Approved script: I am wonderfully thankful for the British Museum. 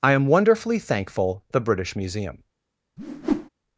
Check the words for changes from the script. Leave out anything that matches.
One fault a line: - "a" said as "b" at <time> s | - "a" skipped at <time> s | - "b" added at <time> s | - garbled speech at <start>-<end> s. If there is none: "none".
- "for" skipped at 1.4 s